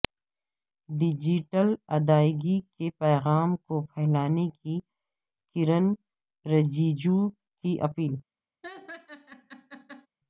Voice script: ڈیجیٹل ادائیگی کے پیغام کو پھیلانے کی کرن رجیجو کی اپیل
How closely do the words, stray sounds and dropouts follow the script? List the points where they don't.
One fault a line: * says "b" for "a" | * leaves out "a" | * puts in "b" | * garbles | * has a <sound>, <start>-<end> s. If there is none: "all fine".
* has a laugh, 8.6-10.1 s